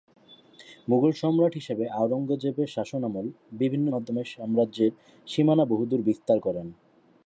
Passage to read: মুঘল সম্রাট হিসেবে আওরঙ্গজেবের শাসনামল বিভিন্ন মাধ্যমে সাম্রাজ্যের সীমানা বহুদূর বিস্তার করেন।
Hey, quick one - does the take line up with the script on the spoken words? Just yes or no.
yes